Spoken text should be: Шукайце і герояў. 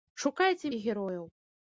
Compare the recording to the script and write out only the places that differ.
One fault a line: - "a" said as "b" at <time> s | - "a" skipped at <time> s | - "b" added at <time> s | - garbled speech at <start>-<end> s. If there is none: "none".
none